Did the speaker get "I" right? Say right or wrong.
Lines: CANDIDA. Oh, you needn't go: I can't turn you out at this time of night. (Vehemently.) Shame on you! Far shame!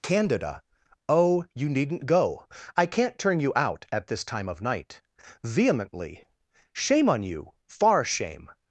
right